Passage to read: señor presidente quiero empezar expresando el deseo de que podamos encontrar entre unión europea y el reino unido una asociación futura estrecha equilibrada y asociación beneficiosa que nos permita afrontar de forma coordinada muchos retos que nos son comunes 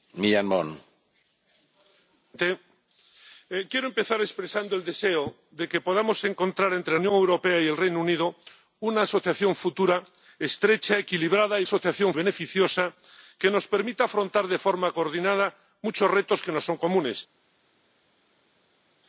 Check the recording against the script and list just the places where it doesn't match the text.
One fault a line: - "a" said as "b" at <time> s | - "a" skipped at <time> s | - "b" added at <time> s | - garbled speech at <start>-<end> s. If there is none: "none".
none